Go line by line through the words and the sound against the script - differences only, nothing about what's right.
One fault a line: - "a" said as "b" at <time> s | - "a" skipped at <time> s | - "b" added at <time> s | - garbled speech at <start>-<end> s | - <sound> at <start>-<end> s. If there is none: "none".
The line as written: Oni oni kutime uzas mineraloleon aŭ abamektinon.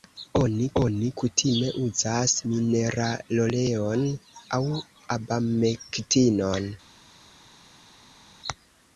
none